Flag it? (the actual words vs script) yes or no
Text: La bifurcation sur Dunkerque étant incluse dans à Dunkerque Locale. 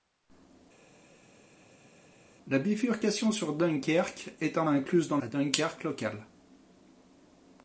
no